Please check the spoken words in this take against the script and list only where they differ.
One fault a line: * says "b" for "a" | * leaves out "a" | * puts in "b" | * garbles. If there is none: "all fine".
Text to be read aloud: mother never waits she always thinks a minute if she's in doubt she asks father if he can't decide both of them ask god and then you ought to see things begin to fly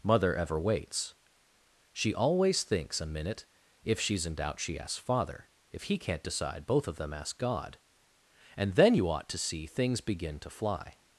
* says "ever" for "never"